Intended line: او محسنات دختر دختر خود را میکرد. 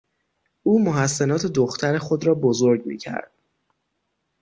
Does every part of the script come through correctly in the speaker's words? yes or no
no